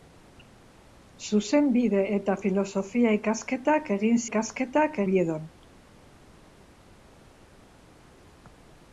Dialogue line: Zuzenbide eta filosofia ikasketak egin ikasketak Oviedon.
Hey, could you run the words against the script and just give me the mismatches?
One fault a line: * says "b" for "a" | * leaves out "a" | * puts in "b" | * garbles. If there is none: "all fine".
all fine